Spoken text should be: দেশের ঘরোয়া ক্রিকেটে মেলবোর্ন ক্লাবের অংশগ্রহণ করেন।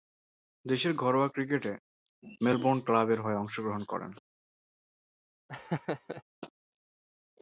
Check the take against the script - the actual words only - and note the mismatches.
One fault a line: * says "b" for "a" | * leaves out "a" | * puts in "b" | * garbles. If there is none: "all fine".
* puts in "হয়ে"